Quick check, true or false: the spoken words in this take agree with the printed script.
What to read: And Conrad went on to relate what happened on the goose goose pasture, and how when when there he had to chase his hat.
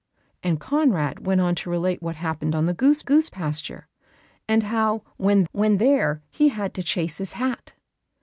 true